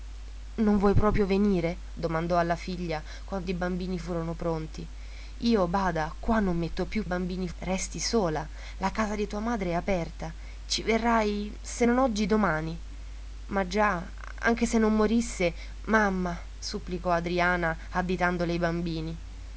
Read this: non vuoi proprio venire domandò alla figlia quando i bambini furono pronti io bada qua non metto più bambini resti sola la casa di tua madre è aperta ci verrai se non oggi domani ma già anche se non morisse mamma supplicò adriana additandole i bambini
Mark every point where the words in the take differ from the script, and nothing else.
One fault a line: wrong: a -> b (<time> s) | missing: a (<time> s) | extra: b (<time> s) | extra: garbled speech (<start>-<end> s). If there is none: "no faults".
no faults